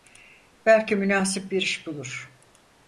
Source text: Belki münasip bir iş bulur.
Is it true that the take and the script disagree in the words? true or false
false